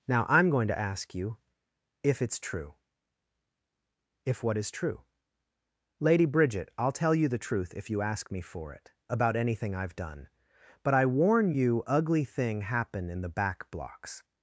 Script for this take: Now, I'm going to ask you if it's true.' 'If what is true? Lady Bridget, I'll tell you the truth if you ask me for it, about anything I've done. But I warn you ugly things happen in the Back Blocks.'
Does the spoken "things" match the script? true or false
false